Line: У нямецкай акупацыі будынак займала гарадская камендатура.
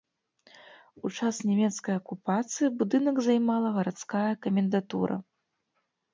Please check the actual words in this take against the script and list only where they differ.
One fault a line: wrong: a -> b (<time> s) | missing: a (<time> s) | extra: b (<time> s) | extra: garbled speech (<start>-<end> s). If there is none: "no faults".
extra: час (1.2 s)